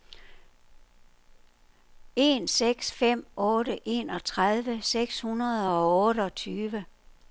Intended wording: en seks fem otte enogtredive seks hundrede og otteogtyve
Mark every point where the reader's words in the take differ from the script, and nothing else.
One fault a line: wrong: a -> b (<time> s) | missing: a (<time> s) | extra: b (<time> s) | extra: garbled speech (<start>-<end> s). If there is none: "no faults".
no faults